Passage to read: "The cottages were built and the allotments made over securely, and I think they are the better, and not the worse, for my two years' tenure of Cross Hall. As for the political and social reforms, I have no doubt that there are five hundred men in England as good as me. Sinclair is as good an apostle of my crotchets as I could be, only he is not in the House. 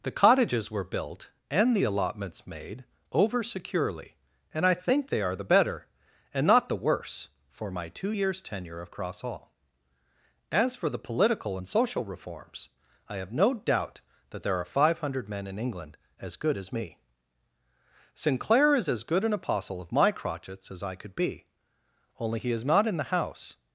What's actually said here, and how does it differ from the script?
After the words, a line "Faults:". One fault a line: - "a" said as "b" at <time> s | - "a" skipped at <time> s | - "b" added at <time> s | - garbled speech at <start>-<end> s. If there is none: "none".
"The cottages were built and the allotments made over securely, and I think they are the better, and not the worse, for my two years' tenure of Cross Hall. As for the political and social reforms, I have no doubt that there are five hundred men in England as good as me. Sinclair is as good an apostle of my crotchets as I could be, only he is not in the House.
Faults:
none